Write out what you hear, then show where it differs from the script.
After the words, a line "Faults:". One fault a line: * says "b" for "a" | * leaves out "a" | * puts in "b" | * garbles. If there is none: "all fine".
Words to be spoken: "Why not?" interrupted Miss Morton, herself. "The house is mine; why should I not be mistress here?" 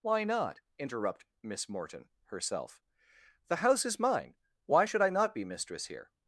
"Why not?" interrupt Miss Morton, herself. "The house is mine; why should I not be mistress here?"
Faults:
* says "interrupt" for "interrupted"